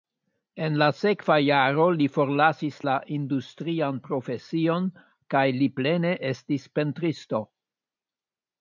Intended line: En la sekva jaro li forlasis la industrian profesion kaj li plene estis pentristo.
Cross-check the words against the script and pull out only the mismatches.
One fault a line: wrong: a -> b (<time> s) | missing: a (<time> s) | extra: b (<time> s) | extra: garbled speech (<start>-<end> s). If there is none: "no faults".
no faults